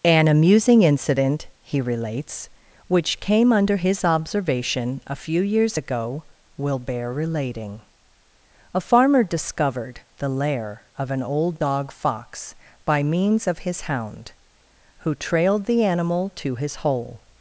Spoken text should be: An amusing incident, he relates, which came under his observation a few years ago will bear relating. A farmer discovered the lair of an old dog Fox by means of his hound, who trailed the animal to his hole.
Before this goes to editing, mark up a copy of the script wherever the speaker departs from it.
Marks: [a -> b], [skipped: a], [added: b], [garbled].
An amusing incident, he relates, which came under his observation a few years ago will bear relating. A farmer discovered the lair of an old dog Fox by means of his hound, who trailed the animal to his hole.